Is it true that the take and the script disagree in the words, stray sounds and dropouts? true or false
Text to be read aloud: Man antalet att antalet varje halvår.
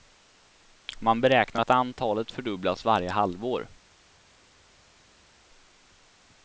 true